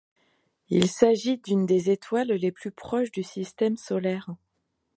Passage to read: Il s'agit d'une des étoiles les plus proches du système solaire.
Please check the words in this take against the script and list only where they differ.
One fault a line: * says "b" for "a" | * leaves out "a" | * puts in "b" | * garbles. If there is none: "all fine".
all fine